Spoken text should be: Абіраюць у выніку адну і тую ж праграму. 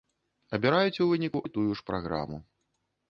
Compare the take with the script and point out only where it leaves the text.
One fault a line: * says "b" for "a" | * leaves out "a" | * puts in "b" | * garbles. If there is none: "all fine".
* leaves out "адну"